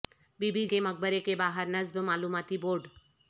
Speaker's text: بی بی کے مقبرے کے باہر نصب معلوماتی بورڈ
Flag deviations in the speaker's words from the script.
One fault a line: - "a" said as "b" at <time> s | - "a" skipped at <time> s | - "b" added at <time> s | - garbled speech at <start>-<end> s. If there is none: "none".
none